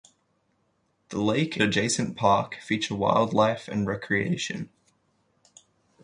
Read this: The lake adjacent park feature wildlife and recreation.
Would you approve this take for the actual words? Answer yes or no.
yes